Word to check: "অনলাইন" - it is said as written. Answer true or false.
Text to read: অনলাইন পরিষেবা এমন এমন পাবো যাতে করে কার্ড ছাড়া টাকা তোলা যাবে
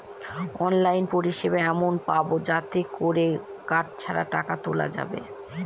true